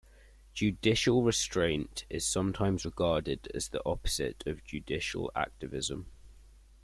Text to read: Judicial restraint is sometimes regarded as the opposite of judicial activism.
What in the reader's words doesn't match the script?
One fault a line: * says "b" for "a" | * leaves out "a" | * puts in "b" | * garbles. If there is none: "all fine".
all fine